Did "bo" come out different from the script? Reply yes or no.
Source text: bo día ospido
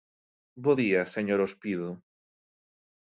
no